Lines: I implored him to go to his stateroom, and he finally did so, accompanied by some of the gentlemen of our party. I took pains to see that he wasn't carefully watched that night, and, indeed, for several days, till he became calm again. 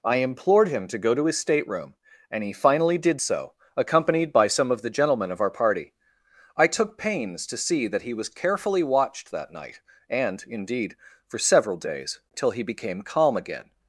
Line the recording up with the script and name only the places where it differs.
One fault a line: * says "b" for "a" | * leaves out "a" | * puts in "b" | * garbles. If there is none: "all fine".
* says "was" for "wasn't"